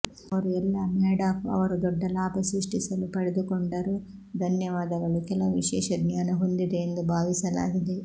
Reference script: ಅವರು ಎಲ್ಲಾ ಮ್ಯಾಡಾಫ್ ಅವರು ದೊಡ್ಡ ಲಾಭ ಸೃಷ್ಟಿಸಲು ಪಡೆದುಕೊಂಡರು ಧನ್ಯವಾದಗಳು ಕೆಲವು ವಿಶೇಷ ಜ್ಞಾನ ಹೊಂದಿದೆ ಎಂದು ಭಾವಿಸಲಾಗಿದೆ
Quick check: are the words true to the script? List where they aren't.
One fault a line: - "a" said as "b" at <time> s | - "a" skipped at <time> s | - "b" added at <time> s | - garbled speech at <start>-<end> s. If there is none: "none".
none